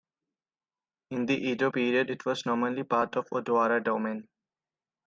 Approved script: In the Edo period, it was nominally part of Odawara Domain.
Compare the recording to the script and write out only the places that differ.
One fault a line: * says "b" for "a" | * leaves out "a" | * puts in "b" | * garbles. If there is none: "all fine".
all fine